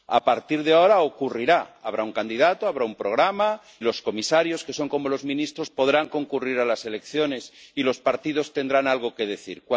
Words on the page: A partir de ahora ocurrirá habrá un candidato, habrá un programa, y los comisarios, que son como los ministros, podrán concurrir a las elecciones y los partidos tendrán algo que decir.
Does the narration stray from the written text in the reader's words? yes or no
yes